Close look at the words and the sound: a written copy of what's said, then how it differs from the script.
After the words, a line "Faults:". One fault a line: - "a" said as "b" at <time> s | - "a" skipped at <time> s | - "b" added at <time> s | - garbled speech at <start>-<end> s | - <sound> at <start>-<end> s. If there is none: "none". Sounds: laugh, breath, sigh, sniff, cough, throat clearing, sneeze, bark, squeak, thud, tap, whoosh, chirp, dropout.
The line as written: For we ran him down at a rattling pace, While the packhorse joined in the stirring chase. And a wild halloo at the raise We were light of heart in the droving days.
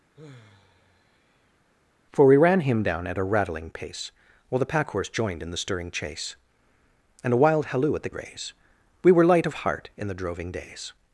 For we ran him down at a rattling pace, While the packhorse joined in the stirring chase. And a wild halloo at the raise We were light of heart in the droving days.
Faults:
- sigh at 0.1-1.6 s